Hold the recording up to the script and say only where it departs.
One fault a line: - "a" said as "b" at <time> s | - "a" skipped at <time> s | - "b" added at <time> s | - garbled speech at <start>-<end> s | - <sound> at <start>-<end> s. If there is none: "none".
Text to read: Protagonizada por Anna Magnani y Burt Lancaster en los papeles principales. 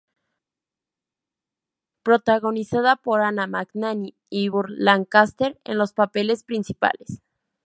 none